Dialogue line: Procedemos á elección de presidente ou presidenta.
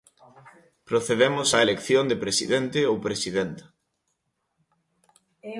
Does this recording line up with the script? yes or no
yes